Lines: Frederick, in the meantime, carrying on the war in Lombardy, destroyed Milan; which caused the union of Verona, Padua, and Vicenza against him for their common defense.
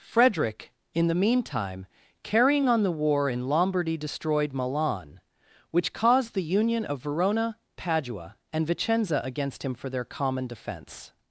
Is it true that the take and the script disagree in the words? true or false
false